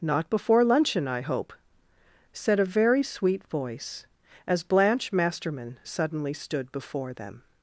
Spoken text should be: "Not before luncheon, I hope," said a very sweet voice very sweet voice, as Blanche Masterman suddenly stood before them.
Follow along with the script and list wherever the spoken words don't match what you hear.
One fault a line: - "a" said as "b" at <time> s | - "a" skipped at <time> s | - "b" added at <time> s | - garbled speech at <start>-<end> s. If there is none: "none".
- "very sweet voice" skipped at 4.1 s